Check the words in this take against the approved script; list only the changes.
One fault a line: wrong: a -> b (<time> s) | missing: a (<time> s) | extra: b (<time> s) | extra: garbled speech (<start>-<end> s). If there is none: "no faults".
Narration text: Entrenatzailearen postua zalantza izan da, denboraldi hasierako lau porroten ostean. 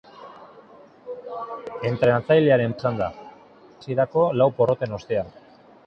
missing: postua zalantza (2.7 s)
missing: denboraldi (3.1 s)